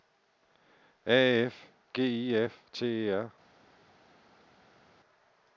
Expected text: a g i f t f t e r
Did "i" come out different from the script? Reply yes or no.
no